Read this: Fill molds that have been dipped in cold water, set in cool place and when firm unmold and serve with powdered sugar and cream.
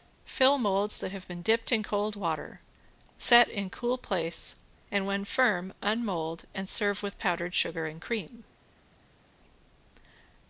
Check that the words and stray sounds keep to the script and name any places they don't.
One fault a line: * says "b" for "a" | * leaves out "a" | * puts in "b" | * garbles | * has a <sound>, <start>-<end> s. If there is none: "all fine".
all fine